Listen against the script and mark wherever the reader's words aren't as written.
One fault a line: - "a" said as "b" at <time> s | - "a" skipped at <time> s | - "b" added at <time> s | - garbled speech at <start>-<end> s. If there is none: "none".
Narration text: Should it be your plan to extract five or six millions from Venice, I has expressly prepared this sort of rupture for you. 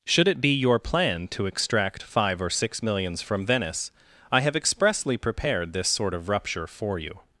- "has" said as "have" at 4.4 s